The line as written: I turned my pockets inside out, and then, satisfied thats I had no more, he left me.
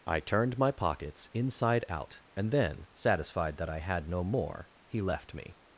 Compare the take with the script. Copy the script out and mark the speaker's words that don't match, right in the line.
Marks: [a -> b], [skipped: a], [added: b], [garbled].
I turned my pockets inside out, and then, satisfied [thats -> that] I had no more, he left me.